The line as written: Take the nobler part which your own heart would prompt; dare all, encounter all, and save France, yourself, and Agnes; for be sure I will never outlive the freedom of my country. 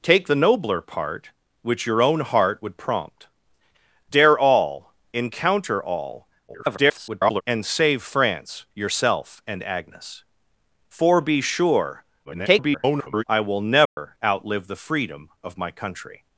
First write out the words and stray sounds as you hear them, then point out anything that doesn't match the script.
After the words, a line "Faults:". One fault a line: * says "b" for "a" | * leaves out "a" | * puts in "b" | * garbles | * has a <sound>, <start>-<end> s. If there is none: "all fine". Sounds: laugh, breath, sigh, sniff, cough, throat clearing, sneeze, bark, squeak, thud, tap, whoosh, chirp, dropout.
Take the nobler part which your own heart would prompt; dare all, encounter all, [garbled] and save France, yourself, and Agnes; for be sure [garbled] I will never outlive the freedom of my country.
Faults:
* garbles
* garbles
* has a dropout, 13.9-14.0 s